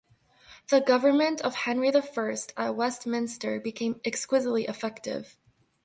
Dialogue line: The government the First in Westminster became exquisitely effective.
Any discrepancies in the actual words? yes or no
yes